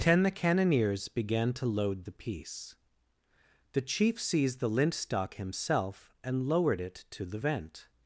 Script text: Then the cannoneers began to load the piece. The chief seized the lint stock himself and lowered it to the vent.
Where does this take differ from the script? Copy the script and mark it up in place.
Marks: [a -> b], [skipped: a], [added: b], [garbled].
[Then -> Ten] the cannoneers began to load the piece. The chief seized the lint stock himself and lowered it to the vent.